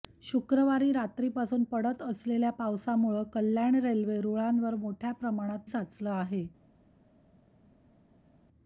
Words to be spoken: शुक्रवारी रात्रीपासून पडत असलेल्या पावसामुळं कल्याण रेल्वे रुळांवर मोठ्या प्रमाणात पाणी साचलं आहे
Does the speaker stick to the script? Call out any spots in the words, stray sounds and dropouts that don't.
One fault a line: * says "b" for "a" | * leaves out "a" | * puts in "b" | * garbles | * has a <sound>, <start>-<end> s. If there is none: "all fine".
* leaves out "पाणी"